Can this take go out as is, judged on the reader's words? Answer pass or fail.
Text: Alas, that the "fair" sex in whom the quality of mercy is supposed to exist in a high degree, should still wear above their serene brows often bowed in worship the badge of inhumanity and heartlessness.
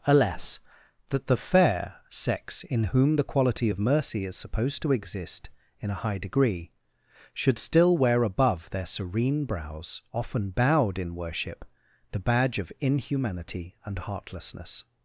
pass